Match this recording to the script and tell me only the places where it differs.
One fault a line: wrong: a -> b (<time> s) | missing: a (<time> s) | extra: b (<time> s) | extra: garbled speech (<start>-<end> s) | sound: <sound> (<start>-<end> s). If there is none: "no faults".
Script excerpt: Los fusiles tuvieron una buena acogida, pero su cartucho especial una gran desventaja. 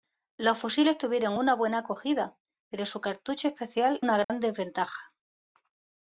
sound: dropout (4.2-4.3 s)